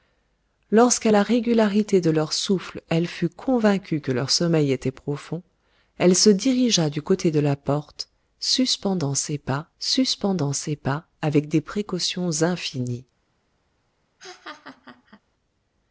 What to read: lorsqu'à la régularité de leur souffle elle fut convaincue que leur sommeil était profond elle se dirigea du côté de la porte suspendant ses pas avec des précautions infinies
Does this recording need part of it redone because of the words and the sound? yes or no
yes